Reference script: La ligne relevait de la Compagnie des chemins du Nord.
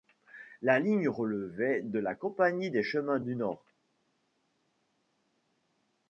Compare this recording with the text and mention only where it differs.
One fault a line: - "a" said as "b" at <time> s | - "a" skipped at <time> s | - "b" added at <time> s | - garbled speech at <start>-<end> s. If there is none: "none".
none